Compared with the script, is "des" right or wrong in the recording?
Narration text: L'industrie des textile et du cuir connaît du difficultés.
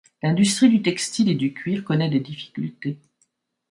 wrong